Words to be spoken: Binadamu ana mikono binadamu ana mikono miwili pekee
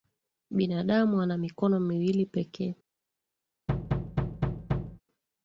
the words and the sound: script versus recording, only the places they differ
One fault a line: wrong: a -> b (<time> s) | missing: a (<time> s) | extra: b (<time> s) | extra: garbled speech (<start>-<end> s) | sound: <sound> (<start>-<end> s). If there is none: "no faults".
missing: binadamu ana mikono (1.8 s)
sound: thud (3.7-5.0 s)